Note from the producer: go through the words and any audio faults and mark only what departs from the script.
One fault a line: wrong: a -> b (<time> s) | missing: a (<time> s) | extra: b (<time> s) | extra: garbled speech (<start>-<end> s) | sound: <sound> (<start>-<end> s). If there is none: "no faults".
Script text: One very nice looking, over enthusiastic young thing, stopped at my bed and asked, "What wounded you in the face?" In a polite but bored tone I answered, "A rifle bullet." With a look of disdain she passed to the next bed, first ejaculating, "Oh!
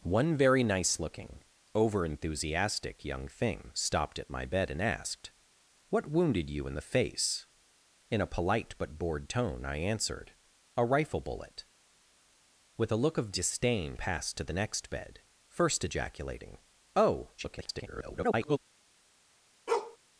missing: she (14.0 s)
extra: garbled speech (17.4-18.6 s)
sound: bark (19.7-20.0 s)